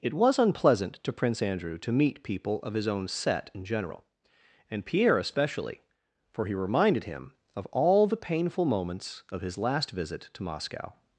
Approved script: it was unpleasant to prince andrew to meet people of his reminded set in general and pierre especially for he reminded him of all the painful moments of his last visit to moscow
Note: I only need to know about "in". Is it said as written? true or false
true